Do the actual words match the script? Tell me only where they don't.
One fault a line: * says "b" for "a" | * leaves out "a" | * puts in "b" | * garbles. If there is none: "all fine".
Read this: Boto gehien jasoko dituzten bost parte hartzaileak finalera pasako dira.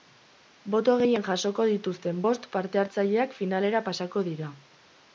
all fine